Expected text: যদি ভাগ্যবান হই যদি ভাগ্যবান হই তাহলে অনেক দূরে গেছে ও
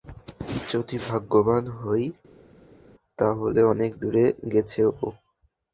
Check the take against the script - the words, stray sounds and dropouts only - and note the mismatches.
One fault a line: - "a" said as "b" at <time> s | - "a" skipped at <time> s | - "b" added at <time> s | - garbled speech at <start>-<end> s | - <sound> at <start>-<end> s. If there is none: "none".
- "যদি ভাগ্যবান হই" skipped at 2.0 s